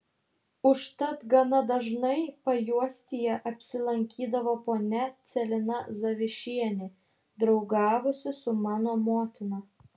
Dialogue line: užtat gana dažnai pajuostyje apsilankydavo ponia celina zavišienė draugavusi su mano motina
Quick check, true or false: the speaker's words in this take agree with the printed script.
true